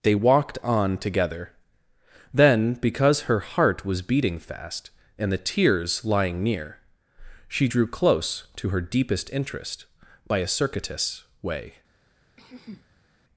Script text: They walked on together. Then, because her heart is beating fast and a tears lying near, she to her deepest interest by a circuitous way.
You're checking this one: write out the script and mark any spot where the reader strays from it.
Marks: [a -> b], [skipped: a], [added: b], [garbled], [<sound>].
They walked on together. Then, because her heart [is -> was] beating fast and [a -> the] tears lying near, she [added: drew close] to her deepest interest by a circuitous way. [throat clearing]